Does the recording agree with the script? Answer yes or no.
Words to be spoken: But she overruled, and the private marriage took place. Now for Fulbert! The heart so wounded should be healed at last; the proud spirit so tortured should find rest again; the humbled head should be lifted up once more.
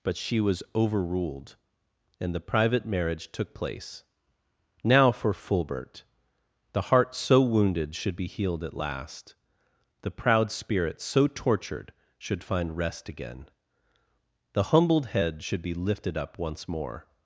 no